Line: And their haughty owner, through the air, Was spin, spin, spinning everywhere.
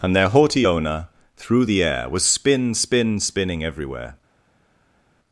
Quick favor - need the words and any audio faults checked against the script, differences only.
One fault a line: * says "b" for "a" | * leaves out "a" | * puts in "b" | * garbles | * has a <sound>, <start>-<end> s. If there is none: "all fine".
all fine